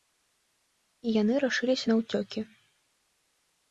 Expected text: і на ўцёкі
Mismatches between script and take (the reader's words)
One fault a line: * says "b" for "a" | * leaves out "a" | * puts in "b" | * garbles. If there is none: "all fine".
* puts in "яны рашыліся"